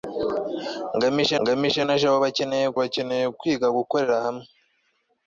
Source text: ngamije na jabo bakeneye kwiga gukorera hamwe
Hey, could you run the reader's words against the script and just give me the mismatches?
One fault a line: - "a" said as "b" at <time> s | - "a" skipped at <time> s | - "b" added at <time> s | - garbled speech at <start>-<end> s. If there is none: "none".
- "ngamije" added at 1.4 s
- "bakeneye" added at 2.8 s